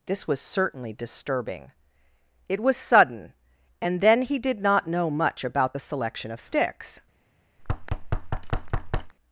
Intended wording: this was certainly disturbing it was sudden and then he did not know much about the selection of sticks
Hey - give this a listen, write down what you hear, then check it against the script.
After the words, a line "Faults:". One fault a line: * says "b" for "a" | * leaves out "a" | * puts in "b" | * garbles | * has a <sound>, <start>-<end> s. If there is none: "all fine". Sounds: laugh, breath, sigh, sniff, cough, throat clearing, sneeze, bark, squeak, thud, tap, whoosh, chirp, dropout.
this was certainly disturbing it was sudden and then he did not know much about the selection of sticks
Faults:
* has a thud, 7.6-9.1 s